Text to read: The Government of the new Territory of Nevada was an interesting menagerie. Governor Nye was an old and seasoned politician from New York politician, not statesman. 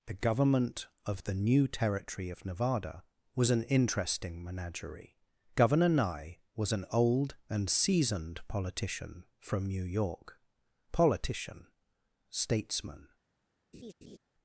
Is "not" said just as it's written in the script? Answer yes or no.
no